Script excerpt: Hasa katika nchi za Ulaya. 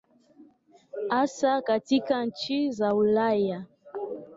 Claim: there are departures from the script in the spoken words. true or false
false